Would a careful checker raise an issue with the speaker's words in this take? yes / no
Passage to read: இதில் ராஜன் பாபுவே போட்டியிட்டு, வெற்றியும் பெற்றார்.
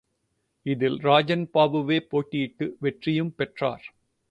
no